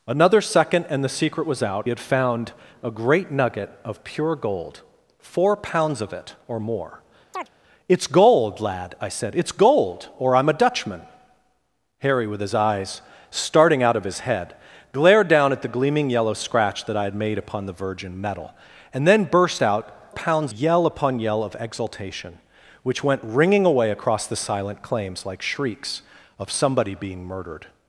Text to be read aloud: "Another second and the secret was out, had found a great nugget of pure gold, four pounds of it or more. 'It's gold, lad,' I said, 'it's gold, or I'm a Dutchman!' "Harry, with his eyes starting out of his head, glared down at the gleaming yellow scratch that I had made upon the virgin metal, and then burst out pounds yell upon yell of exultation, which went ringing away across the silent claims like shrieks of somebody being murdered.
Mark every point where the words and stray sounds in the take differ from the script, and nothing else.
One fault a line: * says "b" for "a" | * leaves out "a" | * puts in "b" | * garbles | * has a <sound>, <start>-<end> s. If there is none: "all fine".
* has a chirp, 7.3-7.5 s